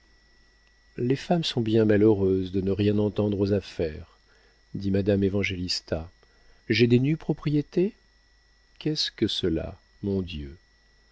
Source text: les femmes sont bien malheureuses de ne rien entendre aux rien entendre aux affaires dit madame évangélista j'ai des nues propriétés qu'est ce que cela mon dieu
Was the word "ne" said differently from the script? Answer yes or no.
no